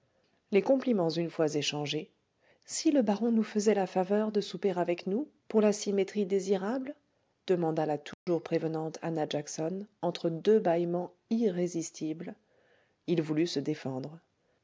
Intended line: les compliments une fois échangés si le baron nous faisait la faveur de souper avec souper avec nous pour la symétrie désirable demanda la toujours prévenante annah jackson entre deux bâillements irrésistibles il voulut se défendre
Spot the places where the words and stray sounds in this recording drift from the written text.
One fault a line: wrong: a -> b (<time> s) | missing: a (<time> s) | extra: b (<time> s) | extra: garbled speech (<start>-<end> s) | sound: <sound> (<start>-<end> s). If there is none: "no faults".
missing: souper avec (5.0 s)
sound: dropout (8.1-8.3 s)